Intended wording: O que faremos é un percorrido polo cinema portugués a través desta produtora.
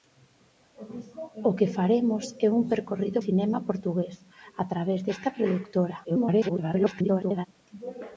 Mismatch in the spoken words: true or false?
true